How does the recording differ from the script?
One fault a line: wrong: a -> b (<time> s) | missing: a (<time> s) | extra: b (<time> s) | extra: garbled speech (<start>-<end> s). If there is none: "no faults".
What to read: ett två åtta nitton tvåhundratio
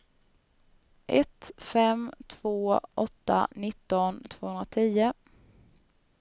extra: fem (1.6 s)